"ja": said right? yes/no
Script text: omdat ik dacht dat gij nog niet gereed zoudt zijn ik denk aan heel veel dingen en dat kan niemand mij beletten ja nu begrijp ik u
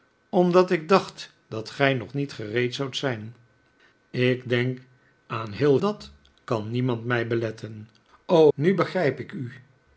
no